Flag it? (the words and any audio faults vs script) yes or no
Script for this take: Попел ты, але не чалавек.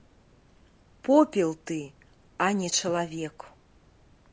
yes